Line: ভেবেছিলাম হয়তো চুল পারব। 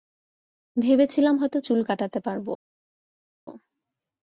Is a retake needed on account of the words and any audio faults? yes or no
yes